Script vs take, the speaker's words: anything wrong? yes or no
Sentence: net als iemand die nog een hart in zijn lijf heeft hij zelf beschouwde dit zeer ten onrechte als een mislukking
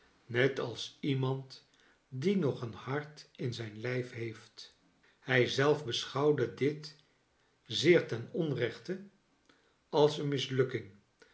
no